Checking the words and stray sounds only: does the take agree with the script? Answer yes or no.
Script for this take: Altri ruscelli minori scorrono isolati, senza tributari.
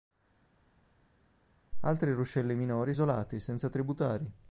no